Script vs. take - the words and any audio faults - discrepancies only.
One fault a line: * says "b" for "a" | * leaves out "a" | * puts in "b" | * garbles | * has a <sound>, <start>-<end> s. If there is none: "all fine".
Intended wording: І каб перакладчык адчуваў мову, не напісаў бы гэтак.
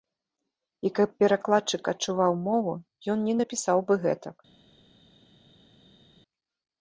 * puts in "ён"